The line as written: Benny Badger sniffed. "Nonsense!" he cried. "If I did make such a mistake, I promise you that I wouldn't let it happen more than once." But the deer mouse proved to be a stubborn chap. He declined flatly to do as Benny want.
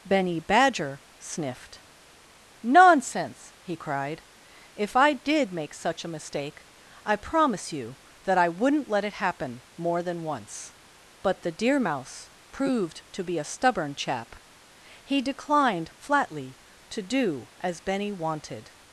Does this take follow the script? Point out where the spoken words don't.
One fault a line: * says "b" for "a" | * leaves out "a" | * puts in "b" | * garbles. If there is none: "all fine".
* says "wanted" for "want"